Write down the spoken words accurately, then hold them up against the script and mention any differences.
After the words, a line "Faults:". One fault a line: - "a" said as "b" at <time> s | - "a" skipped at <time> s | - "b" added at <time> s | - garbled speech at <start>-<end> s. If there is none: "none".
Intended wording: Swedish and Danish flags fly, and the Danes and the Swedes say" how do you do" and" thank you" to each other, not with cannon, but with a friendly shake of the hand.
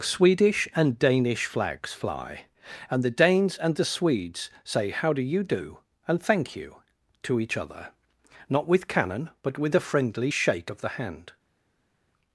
Swedish and Danish flags fly, and the Danes and the Swedes say" how do you do" and" thank you" to each other, not with cannon, but with a friendly shake of the hand.
Faults:
none